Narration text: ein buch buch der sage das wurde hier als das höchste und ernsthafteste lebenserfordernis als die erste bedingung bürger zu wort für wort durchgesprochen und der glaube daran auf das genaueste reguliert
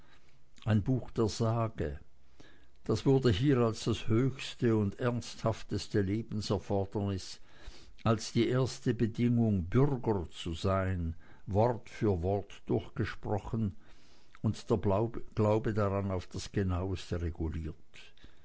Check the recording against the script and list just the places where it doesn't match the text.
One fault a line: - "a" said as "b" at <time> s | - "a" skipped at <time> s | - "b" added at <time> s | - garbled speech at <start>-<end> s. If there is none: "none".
- "buch" skipped at 1.1 s
- "sein" added at 10.5 s